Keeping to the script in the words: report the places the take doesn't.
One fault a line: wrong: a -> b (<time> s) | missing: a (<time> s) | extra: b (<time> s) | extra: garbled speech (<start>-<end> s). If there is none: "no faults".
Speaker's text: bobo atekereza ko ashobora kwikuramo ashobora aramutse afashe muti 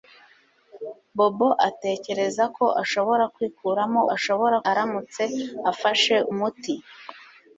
no faults